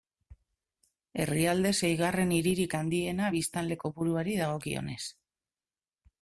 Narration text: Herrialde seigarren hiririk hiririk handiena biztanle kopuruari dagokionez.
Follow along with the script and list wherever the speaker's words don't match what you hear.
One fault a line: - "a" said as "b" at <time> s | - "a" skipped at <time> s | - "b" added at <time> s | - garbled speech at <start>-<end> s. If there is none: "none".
- "hiririk" skipped at 2.7 s